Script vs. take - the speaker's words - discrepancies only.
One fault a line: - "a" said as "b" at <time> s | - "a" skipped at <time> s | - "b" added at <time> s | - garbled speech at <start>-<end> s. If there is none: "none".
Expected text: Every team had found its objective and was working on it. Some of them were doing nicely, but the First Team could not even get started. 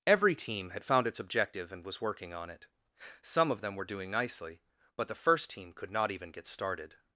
none